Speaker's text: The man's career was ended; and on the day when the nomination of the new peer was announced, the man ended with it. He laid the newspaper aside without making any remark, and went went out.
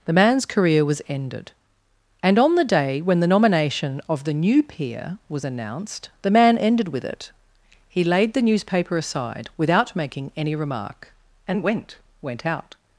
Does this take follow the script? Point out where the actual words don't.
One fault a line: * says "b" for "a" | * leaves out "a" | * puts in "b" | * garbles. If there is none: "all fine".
all fine